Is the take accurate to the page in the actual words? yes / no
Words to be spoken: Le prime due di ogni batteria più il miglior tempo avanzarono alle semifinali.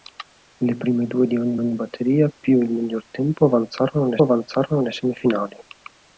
no